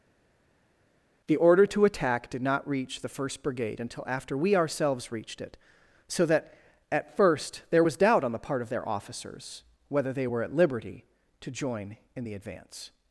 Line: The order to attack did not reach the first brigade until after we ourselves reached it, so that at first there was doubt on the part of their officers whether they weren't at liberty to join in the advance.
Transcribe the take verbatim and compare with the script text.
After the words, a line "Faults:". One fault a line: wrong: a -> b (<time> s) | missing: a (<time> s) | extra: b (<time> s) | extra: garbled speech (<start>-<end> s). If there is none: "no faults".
The order to attack did not reach the first brigade until after we ourselves reached it, so that at first there was doubt on the part of their officers whether they were at liberty to join in the advance.
Faults:
wrong: weren't -> were (10.2 s)